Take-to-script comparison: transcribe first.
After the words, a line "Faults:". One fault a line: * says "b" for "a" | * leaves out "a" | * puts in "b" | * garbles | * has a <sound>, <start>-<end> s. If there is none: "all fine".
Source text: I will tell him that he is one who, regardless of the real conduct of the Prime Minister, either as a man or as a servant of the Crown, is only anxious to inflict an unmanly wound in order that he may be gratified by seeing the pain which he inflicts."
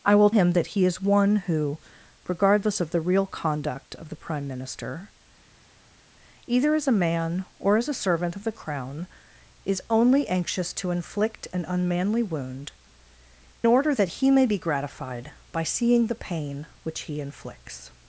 I will him that he is one who, regardless of the real conduct of the Prime Minister, either as a man or as a servant of the Crown, is only anxious to inflict an unmanly wound order that he may be gratified by seeing the pain which he inflicts."
Faults:
* leaves out "tell"
* leaves out "in"